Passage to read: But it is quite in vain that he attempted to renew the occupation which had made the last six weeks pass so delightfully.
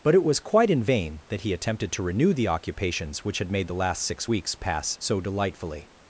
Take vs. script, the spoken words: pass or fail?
fail